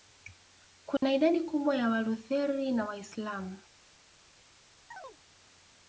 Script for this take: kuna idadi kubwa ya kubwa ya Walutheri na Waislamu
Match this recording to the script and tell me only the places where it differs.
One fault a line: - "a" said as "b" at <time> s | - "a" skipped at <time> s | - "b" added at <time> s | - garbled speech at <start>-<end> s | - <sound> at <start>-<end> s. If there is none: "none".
- dropout at 1.0-1.0 s
- "kubwa ya" skipped at 1.9 s
- chirp at 4.9-5.2 s